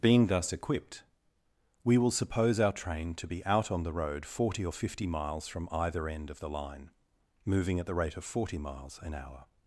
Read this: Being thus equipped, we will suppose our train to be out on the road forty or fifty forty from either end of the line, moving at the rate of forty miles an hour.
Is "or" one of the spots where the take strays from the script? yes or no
no